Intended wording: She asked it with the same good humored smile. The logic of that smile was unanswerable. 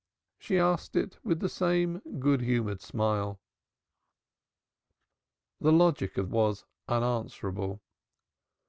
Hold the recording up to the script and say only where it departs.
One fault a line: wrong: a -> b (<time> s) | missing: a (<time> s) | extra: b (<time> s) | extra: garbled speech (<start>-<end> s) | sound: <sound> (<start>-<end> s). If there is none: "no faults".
missing: that smile (6.3 s)